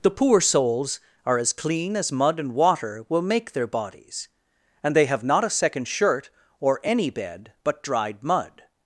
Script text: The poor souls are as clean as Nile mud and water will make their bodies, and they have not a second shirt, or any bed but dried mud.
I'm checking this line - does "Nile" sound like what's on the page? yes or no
no